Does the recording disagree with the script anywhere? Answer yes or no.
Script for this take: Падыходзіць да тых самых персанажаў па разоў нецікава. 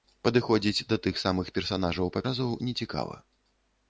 no